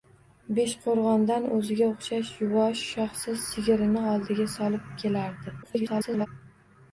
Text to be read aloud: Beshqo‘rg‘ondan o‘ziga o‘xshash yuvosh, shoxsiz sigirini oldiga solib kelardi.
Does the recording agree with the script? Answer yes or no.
no